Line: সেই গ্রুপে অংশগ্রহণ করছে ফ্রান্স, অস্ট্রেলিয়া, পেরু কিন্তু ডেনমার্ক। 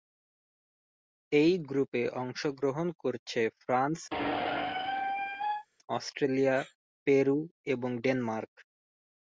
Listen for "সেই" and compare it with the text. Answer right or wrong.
wrong